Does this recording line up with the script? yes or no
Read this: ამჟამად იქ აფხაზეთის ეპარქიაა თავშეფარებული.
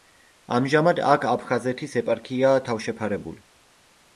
no